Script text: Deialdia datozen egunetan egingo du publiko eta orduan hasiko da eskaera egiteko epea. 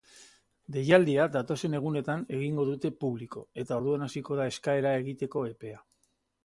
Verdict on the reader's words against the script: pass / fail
fail